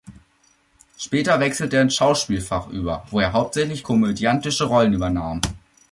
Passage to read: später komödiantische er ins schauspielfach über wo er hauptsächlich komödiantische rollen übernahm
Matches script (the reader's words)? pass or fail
fail